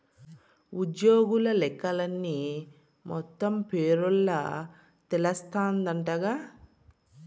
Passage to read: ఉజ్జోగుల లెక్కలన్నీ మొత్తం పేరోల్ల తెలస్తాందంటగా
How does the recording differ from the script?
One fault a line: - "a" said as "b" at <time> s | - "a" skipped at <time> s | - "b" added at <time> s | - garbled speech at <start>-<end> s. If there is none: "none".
none